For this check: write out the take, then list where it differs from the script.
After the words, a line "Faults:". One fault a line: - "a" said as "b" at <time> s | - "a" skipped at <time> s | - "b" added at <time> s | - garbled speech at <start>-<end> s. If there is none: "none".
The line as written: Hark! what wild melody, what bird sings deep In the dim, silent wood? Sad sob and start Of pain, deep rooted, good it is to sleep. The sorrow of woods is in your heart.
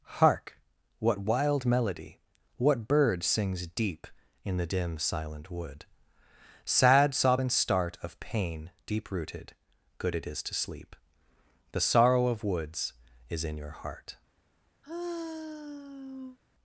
Hark! what wild melody, what bird sings deep In the dim, silent wood? Sad sob and start Of pain, deep rooted, good it is to sleep. The sorrow of woods is in your heart.
Faults:
none